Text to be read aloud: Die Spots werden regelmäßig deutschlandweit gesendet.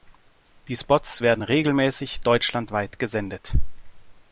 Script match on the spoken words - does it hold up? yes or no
yes